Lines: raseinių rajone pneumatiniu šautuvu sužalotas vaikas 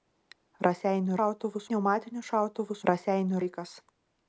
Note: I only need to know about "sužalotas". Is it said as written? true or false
false